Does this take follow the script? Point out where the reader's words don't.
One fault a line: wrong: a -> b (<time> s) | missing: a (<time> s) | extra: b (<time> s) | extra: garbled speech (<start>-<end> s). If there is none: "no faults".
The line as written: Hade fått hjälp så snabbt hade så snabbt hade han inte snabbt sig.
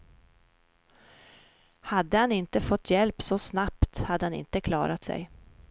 extra: han inte (2.2 s)
missing: så snabbt hade (4.2 s)
wrong: snabbt -> klarat (4.6 s)